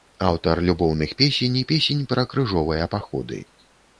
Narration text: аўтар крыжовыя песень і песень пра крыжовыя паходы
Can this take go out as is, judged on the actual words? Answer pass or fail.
fail